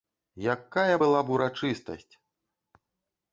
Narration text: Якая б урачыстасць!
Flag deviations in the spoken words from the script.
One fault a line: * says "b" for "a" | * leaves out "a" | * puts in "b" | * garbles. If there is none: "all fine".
* puts in "была"